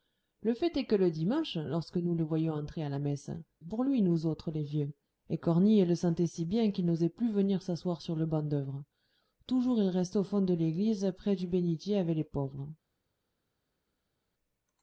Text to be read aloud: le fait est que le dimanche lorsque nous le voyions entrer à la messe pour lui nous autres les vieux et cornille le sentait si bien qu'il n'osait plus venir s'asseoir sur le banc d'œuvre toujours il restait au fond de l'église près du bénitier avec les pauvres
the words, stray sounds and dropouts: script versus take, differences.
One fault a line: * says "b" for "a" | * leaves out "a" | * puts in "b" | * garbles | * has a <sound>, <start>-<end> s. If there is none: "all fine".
all fine